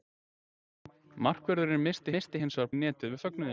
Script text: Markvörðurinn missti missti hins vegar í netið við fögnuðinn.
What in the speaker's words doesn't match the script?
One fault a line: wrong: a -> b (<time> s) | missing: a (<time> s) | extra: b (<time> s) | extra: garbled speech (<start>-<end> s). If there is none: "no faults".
no faults